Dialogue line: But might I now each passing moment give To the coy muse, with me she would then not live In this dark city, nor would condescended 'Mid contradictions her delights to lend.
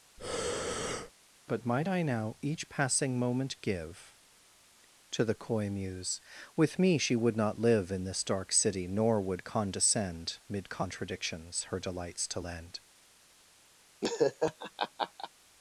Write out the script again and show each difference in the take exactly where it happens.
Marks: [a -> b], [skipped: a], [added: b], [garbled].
But might I now each passing moment give To the coy muse, with me she would [skipped: then] not live In this dark city, nor would [condescended -> condescend] 'Mid contradictions her delights to lend.